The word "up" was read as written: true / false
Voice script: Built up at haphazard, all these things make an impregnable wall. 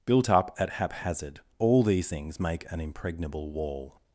true